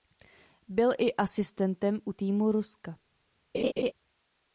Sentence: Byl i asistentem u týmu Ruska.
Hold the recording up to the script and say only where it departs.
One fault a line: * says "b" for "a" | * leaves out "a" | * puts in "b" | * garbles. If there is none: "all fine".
all fine